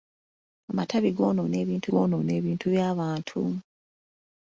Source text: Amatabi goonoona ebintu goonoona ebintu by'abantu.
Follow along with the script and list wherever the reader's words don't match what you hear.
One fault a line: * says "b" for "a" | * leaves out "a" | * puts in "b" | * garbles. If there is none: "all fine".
all fine